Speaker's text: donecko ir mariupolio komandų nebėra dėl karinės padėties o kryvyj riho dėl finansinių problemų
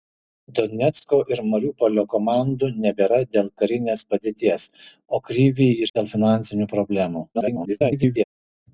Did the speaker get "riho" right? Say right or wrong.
wrong